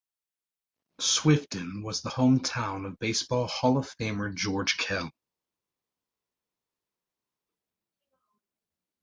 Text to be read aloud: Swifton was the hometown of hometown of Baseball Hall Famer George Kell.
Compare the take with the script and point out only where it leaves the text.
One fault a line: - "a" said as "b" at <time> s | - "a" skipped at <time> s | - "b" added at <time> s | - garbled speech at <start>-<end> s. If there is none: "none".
- "hometown of" skipped at 3.0 s
- "of" added at 3.8 s